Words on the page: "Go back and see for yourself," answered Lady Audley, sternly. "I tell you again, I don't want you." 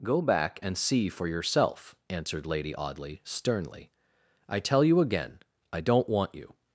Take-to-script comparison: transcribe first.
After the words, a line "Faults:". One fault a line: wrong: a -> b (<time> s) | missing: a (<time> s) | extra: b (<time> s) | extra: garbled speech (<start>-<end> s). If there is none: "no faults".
"Go back and see for yourself," answered Lady Audley, sternly. "I tell you again, I don't want you."
Faults:
no faults